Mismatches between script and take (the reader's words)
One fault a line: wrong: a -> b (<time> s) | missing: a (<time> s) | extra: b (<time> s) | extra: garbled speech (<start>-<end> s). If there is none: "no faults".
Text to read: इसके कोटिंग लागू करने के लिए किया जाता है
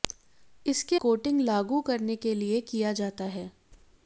no faults